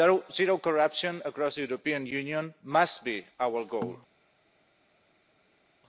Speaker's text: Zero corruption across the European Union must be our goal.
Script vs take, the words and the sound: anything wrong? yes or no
no